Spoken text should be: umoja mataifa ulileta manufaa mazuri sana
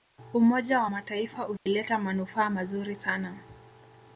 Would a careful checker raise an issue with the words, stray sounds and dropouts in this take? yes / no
yes